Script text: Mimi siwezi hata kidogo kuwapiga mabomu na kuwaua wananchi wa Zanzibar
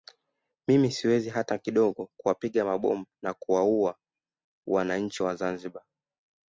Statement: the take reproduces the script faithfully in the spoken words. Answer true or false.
true